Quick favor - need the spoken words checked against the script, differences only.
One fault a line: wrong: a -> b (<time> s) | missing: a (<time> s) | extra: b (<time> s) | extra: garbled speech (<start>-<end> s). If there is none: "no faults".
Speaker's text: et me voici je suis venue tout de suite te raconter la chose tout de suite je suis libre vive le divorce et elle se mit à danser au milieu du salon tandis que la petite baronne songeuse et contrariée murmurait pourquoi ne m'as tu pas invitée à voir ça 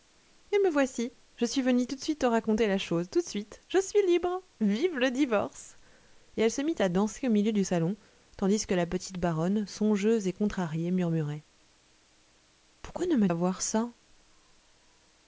missing: tu pas invitée (13.3 s)